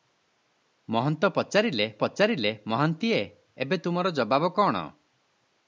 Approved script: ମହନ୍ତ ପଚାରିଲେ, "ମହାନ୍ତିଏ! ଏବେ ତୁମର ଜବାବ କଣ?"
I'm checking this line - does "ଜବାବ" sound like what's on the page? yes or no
yes